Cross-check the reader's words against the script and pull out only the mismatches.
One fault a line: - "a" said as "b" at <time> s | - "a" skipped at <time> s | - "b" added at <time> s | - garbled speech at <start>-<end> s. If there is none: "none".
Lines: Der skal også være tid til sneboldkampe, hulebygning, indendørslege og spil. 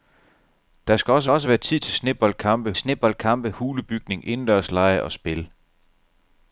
- "også" added at 1.3 s
- "sneboldkampe" added at 2.8 s